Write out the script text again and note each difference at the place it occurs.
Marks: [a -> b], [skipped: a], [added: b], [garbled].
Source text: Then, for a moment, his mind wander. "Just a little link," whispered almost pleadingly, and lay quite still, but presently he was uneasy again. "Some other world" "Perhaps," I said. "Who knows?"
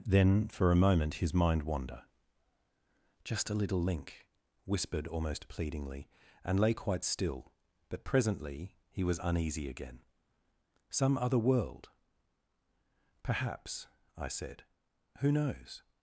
Then, for a moment, his mind wander. "Just a little link," whispered almost pleadingly, and lay quite still, but presently he was uneasy again. "Some other world" "Perhaps," I said. "Who knows?"